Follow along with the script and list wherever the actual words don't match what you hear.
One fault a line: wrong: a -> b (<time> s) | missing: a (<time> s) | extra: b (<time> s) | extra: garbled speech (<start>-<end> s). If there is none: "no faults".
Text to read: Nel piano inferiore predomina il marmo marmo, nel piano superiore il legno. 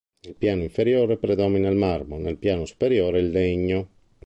missing: marmo (2.2 s)